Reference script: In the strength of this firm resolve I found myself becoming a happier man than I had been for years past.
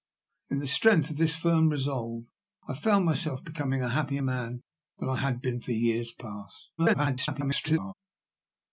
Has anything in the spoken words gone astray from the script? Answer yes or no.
yes